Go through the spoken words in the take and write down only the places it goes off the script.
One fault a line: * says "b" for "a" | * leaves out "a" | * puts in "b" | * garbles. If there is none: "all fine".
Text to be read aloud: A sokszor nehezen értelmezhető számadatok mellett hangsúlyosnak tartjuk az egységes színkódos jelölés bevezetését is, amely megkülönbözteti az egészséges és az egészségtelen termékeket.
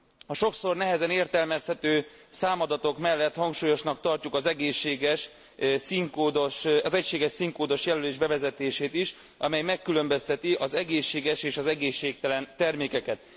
all fine